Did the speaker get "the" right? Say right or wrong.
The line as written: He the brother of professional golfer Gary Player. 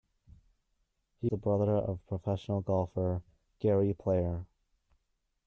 right